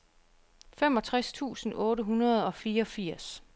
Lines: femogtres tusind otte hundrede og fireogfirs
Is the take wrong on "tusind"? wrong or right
right